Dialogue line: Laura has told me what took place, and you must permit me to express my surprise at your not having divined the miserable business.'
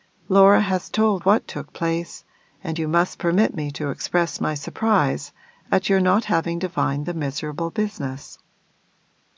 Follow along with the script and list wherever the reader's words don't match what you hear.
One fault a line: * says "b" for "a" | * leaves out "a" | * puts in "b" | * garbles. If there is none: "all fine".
* leaves out "me"